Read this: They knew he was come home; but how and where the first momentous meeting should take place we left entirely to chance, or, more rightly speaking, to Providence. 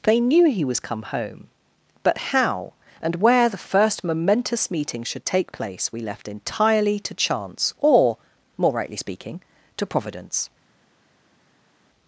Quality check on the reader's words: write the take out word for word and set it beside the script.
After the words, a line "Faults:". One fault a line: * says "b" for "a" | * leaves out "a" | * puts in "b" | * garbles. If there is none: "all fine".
They knew he was come home; but how and where the first momentous meeting should take place we left entirely to chance, or, more rightly speaking, to Providence.
Faults:
all fine